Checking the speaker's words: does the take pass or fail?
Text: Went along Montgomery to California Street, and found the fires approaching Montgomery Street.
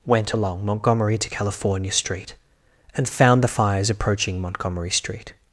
pass